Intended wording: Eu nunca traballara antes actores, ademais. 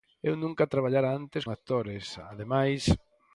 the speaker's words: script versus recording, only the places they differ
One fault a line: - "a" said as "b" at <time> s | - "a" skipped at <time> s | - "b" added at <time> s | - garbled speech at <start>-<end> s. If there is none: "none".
none